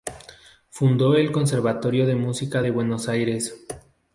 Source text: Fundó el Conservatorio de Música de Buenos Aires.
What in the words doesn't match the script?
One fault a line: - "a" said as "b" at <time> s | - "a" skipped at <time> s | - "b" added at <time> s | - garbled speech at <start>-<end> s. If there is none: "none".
none